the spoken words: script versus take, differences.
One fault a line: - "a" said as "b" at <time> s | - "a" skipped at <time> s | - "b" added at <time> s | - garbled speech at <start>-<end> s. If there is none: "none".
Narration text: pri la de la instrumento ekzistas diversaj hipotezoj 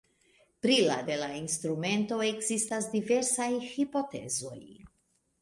none